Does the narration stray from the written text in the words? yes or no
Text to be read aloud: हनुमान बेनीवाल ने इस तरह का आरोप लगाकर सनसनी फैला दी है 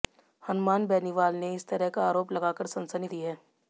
yes